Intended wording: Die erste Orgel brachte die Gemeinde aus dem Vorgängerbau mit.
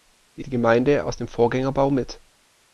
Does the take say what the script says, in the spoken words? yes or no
no